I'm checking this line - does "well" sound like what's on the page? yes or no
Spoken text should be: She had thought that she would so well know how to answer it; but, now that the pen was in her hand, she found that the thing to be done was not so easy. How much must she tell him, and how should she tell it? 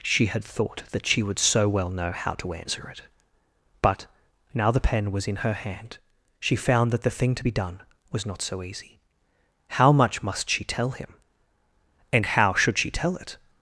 yes